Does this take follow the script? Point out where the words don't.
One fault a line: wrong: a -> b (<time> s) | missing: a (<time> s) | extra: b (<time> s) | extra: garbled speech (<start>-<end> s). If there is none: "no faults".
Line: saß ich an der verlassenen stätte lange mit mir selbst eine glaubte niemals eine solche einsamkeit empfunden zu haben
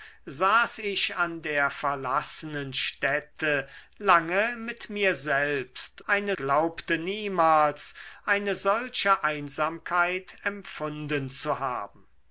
no faults